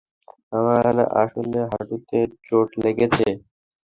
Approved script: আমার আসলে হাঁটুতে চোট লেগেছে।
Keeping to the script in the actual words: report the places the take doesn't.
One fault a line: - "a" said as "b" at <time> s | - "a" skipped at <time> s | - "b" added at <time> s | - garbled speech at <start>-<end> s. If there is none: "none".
none